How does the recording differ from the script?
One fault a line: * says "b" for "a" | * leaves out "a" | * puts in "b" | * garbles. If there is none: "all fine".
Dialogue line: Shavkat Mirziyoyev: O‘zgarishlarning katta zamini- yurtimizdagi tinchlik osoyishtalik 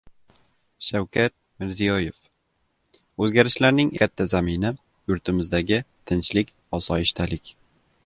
all fine